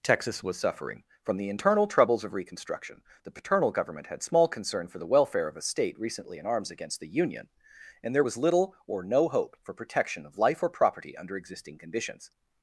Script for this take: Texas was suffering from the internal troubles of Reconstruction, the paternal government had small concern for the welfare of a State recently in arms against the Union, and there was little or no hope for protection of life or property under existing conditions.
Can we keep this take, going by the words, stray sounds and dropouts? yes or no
yes